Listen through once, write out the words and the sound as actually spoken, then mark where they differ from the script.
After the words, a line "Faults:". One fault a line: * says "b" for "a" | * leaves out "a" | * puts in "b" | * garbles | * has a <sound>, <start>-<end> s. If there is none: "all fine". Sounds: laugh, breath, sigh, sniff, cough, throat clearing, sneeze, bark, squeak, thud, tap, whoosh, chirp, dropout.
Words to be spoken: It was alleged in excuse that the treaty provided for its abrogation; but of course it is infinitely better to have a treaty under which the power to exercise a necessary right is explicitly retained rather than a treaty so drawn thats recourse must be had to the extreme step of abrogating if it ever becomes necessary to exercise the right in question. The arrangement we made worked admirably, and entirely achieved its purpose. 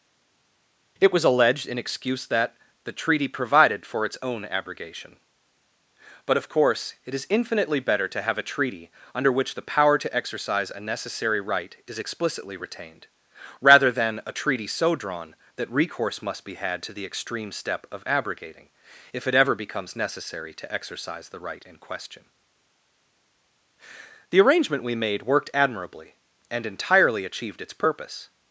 It was alleged in excuse that the treaty provided for its own abrogation; but of course it is infinitely better to have a treaty under which the power to exercise a necessary right is explicitly retained rather than a treaty so drawn that recourse must be had to the extreme step of abrogating if it ever becomes necessary to exercise the right in question. The arrangement we made worked admirably, and entirely achieved its purpose.
Faults:
* puts in "own"
* says "that" for "thats"